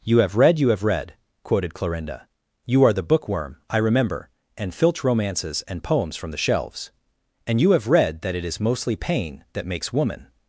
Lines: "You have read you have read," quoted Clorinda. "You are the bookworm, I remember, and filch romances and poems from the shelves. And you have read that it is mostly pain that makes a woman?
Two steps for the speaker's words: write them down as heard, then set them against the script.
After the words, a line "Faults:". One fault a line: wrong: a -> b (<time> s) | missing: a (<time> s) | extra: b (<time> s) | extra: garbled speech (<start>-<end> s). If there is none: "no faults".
"You have read you have read," quoted Clorinda. "You are the bookworm, I remember, and filch romances and poems from the shelves. And you have read that it is mostly pain that makes woman?
Faults:
missing: a (9.9 s)